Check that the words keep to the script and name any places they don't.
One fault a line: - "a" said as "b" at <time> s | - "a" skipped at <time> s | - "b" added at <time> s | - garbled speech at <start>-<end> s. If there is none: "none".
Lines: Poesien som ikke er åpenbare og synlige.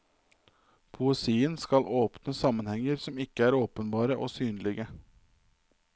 - "skal åpne sammenhenger" added at 1.6 s